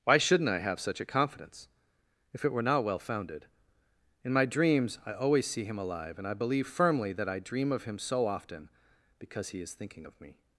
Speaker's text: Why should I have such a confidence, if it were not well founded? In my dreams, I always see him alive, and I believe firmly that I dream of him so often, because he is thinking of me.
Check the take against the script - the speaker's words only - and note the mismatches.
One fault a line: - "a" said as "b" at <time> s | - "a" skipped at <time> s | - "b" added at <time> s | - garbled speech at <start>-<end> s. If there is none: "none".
- "should" said as "shouldn't" at 0.2 s